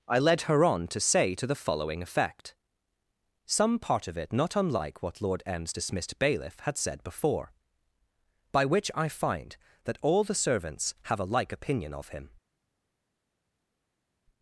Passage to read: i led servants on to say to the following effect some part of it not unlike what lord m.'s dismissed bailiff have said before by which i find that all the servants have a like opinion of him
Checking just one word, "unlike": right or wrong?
right